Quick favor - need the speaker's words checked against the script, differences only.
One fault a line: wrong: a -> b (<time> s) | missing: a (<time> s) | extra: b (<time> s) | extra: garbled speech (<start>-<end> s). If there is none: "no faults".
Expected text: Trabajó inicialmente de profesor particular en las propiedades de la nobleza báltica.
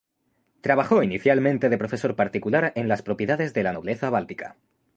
no faults